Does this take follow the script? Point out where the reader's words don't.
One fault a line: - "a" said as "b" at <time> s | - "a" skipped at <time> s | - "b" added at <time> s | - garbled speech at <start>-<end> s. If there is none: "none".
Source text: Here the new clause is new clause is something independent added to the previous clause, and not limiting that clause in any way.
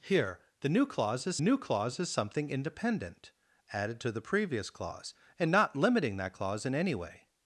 none